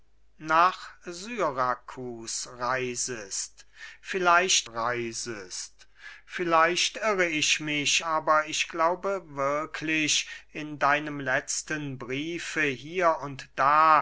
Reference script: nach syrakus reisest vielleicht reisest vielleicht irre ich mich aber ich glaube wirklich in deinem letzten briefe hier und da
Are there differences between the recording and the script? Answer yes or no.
no